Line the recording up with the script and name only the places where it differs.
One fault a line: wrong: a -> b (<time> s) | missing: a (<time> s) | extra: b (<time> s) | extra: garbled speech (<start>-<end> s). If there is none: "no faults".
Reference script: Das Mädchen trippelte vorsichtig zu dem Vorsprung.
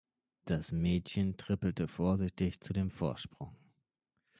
no faults